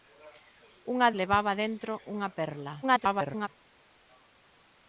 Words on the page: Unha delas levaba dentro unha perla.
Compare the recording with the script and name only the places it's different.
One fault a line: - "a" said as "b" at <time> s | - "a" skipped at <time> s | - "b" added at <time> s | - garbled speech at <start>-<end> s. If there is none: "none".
- "delas" skipped at 1.1 s
- garbled speech at 2.8-3.5 s